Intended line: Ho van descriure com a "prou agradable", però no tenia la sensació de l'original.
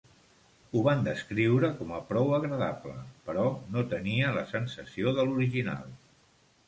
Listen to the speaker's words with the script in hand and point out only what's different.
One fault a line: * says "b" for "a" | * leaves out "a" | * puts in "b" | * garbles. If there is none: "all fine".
all fine